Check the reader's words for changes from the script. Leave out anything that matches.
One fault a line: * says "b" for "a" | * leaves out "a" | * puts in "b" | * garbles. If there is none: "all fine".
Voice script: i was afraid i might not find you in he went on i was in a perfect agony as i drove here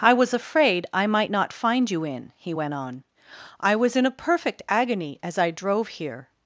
all fine